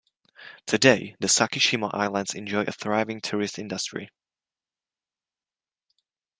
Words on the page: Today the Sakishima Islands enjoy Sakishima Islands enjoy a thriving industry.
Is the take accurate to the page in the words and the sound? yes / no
no